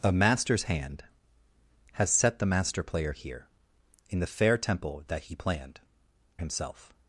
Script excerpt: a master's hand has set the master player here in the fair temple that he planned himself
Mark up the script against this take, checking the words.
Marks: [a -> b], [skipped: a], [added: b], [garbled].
a master's hand has set the master player here in the fair temple that he planned himself